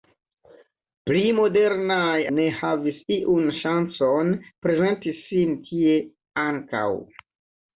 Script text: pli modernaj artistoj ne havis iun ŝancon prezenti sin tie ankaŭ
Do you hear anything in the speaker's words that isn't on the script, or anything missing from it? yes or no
yes